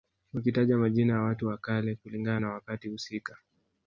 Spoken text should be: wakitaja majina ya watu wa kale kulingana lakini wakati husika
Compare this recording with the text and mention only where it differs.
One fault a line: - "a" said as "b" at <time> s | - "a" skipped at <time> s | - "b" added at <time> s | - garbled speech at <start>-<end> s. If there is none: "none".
- "lakini" said as "na" at 2.4 s